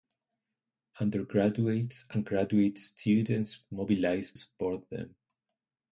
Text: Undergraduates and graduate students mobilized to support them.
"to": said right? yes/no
no